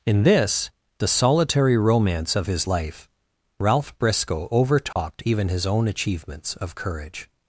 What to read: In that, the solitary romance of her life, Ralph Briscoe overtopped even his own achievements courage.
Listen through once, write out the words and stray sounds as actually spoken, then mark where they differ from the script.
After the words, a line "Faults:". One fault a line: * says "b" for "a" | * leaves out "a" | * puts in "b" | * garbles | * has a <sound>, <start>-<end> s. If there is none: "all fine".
In this, the solitary romance of his life, Ralph Briscoe overtopped even his own achievements of courage.
Faults:
* says "this" for "that"
* says "his" for "her"
* has a dropout, 4.9-5.0 s
* puts in "of"